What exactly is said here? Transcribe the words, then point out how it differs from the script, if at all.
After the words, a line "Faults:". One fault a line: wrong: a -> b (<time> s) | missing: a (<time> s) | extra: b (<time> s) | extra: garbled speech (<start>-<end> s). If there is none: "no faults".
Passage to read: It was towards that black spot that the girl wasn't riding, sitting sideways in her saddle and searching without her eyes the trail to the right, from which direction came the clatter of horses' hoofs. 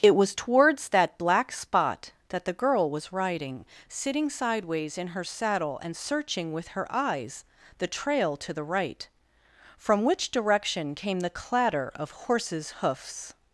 It was towards that black spot that the girl was riding, sitting sideways in her saddle and searching with her eyes the trail to the right, from which direction came the clatter of horses' hoofs.
Faults:
wrong: wasn't -> was (2.9 s)
wrong: without -> with (6.5 s)